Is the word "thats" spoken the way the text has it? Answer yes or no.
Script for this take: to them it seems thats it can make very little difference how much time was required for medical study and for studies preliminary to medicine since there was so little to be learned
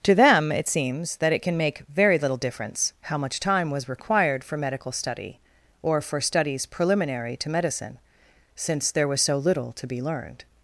no